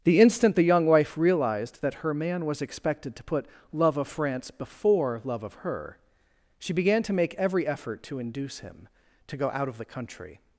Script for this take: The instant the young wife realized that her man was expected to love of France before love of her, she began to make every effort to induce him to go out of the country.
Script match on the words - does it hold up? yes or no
no